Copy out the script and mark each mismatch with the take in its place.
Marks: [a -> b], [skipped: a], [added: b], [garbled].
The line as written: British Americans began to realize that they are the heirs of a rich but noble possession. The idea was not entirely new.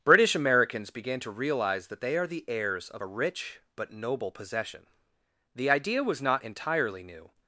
British Americans began to realize that they are the heirs of a rich but noble possession. The idea was not entirely new.